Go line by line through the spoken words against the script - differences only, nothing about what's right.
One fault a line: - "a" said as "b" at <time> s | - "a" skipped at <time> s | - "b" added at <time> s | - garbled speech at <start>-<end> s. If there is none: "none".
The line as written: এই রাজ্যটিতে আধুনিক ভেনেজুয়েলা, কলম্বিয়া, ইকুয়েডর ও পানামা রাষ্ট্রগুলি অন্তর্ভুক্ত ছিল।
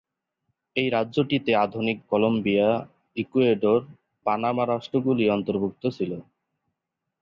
- "ভেনেজুয়েলা" skipped at 2.0 s
- "ও" skipped at 3.8 s